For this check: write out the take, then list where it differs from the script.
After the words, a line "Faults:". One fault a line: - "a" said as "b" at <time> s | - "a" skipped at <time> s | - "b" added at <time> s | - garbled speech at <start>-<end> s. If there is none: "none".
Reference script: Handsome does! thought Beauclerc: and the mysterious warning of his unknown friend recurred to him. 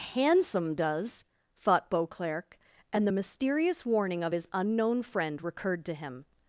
Handsome does! thought Beauclerc: and the mysterious warning of his unknown friend recurred to him.
Faults:
none